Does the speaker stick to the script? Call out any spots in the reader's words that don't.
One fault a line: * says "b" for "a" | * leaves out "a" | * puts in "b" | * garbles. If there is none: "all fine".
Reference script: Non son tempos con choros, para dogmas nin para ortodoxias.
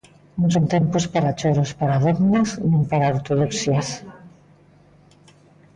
* says "para" for "con"